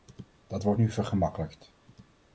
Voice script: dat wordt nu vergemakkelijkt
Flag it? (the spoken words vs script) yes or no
no